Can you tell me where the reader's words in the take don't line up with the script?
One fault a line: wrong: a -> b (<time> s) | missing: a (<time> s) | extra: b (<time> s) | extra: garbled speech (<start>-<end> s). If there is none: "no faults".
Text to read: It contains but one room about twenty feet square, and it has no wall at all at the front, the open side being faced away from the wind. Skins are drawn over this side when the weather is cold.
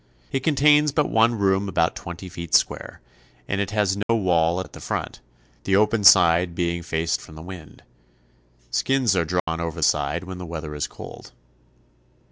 missing: all (4.7 s)
missing: away (7.2 s)
missing: this (9.8 s)